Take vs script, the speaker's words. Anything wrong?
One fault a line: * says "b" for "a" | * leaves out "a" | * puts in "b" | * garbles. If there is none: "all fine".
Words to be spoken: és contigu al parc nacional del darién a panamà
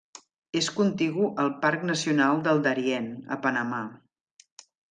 all fine